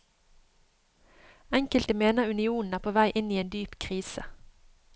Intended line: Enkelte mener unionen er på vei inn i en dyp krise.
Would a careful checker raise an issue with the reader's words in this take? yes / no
no